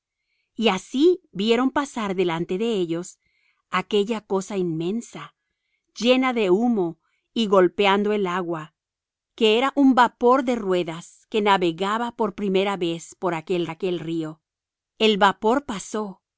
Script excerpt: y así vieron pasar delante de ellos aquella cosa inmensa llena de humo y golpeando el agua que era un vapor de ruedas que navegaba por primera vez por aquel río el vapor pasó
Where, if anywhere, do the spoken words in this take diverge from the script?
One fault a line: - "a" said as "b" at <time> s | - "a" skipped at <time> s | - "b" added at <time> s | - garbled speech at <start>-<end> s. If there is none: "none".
- "aquel" added at 13.7 s